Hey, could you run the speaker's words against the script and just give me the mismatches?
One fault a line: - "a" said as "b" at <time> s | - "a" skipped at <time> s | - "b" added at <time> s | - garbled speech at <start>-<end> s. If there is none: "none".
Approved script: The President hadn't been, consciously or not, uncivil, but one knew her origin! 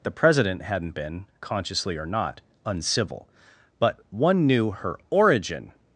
none